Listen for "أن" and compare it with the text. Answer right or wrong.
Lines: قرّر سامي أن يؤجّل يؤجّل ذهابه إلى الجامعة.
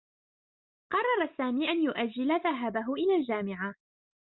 right